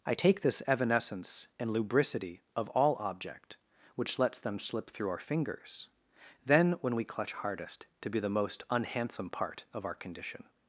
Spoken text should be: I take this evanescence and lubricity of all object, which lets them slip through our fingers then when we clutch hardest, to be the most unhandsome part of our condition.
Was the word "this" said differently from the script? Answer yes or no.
no